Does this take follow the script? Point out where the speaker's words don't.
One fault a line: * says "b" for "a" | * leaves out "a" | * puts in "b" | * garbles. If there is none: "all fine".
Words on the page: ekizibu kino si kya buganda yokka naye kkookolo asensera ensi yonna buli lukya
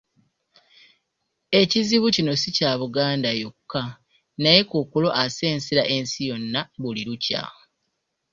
all fine